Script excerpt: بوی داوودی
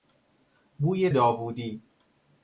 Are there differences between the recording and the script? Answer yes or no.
no